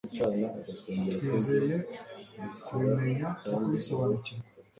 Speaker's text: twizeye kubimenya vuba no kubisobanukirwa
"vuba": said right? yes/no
no